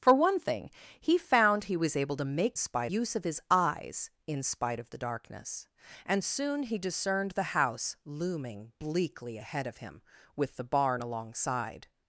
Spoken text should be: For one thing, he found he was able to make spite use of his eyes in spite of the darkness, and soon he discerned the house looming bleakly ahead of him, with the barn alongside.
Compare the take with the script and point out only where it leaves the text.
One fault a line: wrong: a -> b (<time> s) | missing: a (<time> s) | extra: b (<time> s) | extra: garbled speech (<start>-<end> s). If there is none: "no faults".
no faults